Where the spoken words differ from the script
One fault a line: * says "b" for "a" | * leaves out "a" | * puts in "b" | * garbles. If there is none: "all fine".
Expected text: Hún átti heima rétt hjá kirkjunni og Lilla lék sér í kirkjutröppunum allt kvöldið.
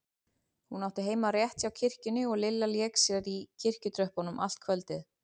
all fine